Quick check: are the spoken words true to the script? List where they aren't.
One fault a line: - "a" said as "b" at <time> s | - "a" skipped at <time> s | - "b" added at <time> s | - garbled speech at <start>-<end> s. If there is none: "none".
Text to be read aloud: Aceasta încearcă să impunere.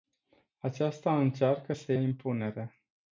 none